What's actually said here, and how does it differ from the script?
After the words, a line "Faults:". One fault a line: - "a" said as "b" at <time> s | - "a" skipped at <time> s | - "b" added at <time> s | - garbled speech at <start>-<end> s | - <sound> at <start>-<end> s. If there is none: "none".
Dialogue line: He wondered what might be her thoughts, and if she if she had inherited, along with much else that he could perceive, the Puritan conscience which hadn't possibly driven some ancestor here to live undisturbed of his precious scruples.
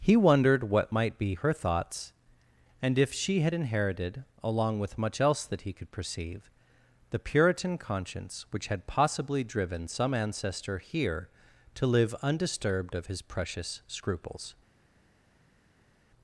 He wondered what might be her thoughts, and if she had inherited, along with much else that he could perceive, the Puritan conscience which had possibly driven some ancestor here to live undisturbed of his precious scruples.
Faults:
- "if she" skipped at 3.4 s
- "hadn't" said as "had" at 8.7 s